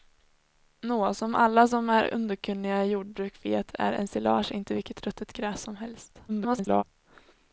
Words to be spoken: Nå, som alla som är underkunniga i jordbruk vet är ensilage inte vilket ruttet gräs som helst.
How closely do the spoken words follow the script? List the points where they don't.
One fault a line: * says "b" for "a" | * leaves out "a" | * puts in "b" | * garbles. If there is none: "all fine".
* garbles